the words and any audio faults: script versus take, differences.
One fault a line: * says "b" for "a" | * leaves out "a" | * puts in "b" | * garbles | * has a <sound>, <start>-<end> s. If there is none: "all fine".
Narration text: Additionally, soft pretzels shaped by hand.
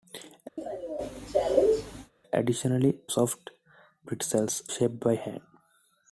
* has a cough, 0.6-2.1 s